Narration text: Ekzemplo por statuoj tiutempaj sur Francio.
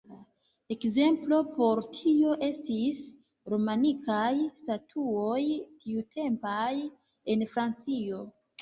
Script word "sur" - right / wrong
wrong